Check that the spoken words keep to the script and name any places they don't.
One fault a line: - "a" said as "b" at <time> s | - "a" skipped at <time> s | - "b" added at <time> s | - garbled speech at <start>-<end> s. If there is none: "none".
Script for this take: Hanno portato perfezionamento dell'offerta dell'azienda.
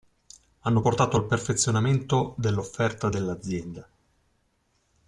- "al" added at 1.2 s